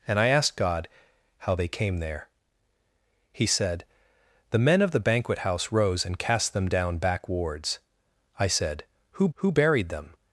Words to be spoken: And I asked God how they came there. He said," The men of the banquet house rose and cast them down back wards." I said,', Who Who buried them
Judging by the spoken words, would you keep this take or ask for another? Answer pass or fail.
pass